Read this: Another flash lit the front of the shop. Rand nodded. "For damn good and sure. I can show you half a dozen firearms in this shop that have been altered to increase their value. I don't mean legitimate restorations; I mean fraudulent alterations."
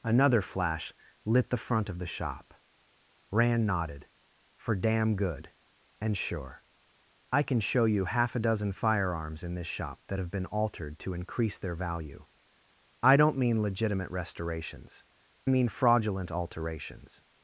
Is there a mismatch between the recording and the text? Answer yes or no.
yes